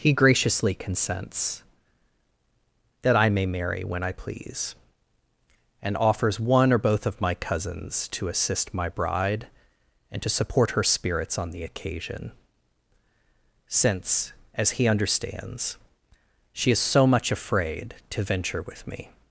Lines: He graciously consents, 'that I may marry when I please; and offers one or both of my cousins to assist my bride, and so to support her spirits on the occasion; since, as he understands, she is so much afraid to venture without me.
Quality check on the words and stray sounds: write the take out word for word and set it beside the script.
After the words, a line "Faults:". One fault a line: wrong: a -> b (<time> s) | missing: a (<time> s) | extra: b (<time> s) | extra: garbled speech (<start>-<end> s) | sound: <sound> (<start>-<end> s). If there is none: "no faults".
He graciously consents, 'that I may marry when I please; and offers one or both of my cousins to assist my bride, and to support her spirits on the occasion; since, as he understands, she is so much afraid to venture with me.
Faults:
missing: so (10.2 s)
wrong: without -> with (18.6 s)